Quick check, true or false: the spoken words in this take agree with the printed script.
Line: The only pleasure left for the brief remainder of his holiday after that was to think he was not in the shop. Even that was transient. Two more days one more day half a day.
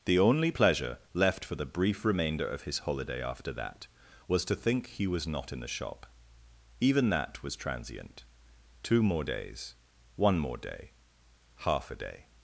true